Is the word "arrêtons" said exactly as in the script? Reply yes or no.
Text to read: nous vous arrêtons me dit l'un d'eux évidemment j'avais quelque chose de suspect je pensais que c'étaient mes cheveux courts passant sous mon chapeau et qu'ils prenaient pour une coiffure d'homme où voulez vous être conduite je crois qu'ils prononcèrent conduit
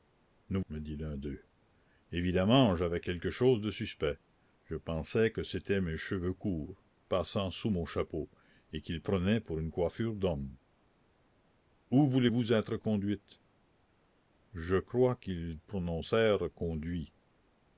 no